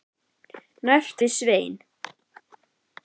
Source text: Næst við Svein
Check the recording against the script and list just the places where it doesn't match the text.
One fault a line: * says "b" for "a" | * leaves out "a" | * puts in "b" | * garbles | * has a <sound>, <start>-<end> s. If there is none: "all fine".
all fine